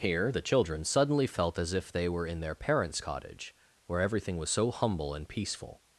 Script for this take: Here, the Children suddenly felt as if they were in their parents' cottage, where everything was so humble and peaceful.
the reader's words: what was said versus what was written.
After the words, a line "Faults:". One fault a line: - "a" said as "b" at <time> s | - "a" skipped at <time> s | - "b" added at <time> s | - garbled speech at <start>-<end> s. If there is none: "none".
Here, the Children suddenly felt as if they were in their parents' cottage, where everything was so humble and peaceful.
Faults:
none